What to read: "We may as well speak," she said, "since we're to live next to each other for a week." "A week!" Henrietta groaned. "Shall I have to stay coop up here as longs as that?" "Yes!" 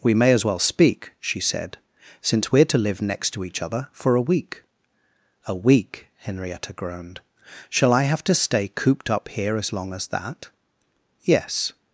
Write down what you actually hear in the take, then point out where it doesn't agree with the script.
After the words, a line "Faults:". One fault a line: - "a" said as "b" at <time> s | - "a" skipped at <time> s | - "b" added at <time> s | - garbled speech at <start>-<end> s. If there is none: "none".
"We may as well speak," she said, "since we're to live next to each other for a week." "A week!" Henrietta groaned. "Shall I have to stay cooped up here as long as that?" "Yes!"
Faults:
- "coop" said as "cooped" at 8.7 s
- "longs" said as "long" at 9.7 s